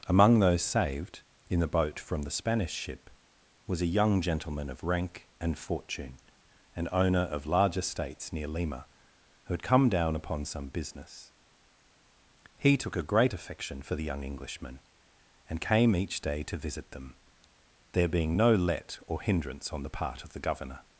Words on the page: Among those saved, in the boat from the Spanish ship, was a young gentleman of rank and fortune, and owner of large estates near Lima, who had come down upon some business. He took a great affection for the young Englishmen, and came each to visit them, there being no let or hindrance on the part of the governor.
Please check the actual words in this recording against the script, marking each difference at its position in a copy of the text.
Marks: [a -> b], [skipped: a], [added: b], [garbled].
Among those saved, in the boat from the Spanish ship, was a young gentleman of rank and fortune, and owner of large estates near Lima, who had come down upon some business. He took a great affection for the young Englishmen, and came each [added: day] to visit them, there being no let or hindrance on the part of the governor.